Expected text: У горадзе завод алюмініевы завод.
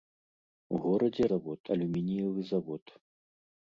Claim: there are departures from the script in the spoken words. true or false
false